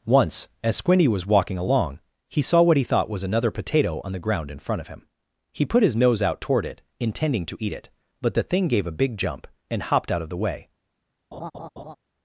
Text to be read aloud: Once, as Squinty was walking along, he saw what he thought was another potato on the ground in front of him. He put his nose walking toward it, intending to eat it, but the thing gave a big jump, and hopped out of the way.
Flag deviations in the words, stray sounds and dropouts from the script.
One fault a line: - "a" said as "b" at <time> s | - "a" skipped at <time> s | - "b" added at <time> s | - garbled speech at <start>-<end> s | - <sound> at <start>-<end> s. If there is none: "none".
- "walking" said as "out" at 6.2 s
- laugh at 11.3-12.0 s